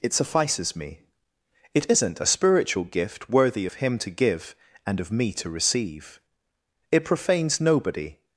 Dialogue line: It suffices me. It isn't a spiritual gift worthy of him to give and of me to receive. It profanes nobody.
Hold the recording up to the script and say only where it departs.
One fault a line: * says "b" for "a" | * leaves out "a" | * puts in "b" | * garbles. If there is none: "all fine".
all fine